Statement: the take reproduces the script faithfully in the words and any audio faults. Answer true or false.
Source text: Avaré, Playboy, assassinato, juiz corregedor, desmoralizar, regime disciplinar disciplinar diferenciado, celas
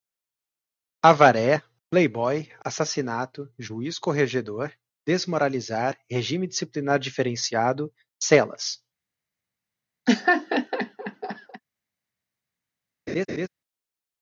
false